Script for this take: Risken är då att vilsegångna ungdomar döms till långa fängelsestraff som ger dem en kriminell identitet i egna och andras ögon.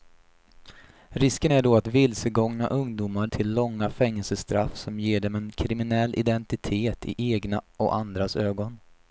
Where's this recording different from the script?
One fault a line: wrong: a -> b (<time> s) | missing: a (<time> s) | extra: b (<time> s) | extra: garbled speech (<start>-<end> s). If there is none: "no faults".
missing: döms (3.3 s)